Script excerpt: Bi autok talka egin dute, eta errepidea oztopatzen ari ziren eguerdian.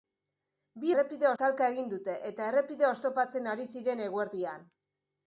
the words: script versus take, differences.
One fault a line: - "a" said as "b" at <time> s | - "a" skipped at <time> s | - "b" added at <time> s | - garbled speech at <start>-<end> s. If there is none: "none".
- "autok" said as "errepidea" at 0.9 s